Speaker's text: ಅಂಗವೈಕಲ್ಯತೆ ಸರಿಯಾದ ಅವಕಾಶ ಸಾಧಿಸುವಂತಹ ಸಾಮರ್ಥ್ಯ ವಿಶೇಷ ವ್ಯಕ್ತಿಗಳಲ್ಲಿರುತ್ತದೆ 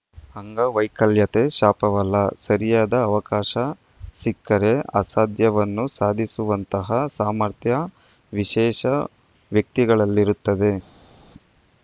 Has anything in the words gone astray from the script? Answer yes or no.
yes